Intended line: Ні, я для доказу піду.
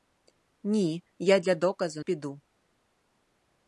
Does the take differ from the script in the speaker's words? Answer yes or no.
no